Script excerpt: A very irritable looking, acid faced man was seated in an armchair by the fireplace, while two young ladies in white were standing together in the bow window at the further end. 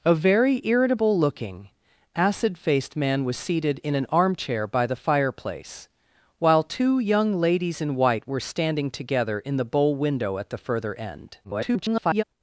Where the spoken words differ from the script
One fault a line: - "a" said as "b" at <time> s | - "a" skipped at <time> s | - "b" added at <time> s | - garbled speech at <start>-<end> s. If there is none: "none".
- garbled speech at 11.4-12.2 s